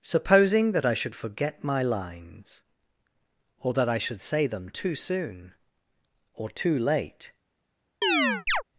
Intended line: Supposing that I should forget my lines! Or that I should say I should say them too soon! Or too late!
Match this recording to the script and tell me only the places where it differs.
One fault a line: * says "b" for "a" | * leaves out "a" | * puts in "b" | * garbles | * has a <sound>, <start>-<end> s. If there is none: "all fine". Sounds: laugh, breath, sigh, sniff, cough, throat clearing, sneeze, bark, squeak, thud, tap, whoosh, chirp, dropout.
* leaves out "I should say"
* has a chirp, 8.0-8.6 s